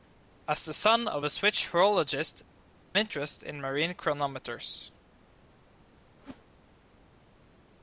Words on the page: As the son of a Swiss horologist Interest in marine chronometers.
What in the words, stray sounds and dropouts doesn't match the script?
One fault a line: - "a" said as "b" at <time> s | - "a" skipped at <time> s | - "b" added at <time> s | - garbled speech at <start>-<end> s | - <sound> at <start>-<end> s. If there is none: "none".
- whoosh at 6.2-6.5 s